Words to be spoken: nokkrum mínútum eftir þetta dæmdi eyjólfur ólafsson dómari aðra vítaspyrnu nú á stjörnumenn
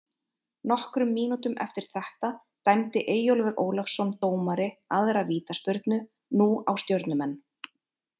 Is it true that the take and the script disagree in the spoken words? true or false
false